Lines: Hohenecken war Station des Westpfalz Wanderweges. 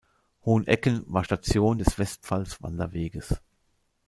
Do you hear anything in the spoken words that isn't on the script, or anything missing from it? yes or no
no